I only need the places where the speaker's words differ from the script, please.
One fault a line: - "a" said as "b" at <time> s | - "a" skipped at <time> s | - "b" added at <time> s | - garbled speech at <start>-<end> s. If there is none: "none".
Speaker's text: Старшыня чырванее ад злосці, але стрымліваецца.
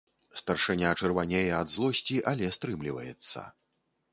none